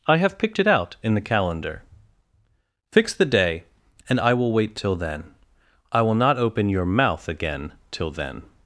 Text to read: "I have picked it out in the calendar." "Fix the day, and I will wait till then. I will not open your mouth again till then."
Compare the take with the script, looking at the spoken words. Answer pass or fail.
pass